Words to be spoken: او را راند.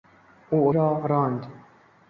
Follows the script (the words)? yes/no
yes